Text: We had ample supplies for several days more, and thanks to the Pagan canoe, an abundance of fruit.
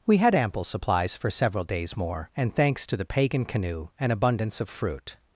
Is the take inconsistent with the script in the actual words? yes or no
no